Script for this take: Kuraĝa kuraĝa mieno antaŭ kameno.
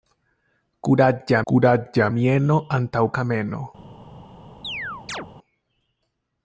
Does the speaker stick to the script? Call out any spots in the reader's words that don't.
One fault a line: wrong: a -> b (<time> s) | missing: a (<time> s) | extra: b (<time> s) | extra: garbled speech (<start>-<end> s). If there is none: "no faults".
no faults